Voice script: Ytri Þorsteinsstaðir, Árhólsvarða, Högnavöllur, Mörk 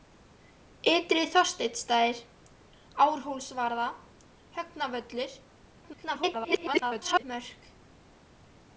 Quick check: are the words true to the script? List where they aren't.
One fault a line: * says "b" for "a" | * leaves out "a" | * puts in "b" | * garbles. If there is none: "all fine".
* garbles